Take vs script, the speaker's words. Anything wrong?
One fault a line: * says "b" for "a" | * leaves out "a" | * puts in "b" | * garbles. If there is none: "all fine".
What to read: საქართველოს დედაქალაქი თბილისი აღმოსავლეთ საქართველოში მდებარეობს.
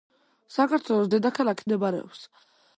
* leaves out "თბილისი აღმოსავლეთ საქართველოში"